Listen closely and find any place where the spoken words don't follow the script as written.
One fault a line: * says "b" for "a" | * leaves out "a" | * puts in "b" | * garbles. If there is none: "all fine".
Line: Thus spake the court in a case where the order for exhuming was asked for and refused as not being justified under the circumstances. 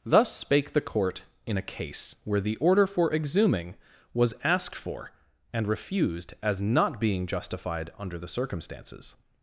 all fine